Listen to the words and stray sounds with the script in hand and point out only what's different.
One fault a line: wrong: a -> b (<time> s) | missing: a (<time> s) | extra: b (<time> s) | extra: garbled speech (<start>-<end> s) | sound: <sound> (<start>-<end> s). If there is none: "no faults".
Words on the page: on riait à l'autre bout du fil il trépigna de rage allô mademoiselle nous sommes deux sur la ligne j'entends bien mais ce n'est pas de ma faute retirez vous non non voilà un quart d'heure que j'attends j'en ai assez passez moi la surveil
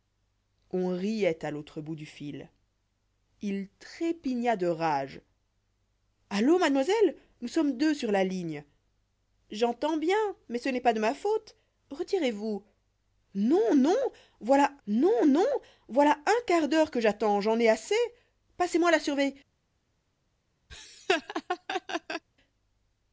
extra: non non voilà (14.9 s)
sound: laugh (20.7-22.2 s)